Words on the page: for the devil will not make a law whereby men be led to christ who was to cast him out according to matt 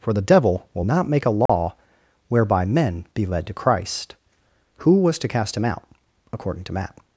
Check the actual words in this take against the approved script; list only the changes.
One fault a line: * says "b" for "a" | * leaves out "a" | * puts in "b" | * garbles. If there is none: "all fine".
all fine